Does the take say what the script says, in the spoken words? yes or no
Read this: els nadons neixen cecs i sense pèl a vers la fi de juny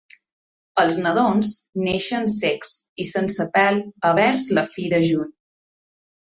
yes